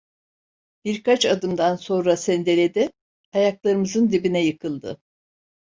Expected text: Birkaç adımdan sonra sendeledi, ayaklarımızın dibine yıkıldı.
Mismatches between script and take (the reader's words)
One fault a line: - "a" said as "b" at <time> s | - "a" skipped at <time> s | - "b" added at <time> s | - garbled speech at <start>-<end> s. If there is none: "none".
none